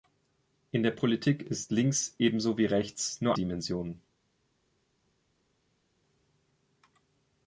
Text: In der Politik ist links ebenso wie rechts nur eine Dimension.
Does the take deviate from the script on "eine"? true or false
true